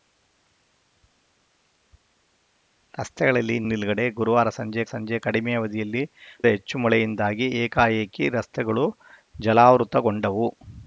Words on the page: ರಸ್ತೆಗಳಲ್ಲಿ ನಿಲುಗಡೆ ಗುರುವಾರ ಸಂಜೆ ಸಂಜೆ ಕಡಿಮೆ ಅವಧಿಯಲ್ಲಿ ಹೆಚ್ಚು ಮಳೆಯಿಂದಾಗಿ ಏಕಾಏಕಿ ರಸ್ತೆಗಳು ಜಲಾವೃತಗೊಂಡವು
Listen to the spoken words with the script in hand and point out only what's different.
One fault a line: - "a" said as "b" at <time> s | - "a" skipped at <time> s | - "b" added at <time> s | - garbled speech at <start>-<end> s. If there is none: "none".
none